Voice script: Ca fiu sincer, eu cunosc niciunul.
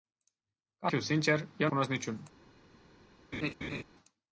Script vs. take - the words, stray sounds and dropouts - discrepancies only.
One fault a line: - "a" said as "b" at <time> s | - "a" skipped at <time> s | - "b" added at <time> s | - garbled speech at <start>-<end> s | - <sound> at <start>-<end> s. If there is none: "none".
- laugh at 3.3-3.8 s